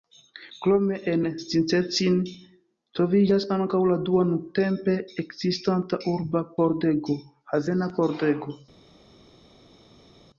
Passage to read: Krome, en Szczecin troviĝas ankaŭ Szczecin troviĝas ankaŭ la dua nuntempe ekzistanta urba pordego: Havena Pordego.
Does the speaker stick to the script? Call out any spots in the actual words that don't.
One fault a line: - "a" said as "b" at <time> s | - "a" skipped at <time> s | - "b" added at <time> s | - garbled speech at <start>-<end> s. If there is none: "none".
- "Szczecin troviĝas ankaŭ" skipped at 3.8 s